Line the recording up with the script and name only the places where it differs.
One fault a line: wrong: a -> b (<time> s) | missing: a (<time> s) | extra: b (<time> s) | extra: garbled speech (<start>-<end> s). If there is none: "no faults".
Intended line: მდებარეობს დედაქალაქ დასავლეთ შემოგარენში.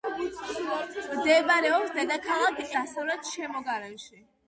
no faults